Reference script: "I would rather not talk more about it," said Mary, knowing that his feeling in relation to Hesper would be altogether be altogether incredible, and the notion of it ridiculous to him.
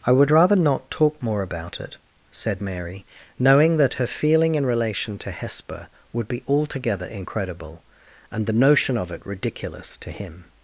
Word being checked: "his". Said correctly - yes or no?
no